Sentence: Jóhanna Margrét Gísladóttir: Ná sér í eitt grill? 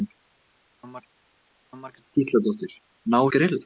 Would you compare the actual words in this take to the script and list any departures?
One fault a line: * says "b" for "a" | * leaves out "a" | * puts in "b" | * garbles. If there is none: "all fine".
* puts in "jóhanna"
* leaves out "sér í eitt"